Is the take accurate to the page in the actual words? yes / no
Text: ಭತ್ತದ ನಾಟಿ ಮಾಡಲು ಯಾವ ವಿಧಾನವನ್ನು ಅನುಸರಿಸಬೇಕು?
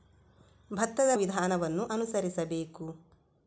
no